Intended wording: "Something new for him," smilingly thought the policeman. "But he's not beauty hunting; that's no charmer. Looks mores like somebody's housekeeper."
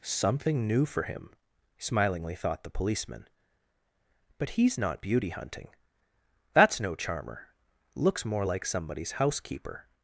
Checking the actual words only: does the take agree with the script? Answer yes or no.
no